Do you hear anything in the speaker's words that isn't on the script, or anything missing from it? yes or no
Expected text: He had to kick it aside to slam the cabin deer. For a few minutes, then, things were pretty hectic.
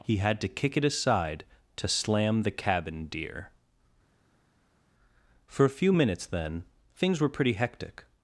no